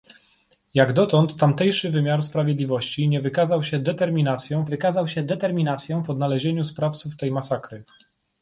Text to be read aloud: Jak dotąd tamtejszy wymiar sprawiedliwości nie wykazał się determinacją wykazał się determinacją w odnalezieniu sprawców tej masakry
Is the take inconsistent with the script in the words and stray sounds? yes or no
no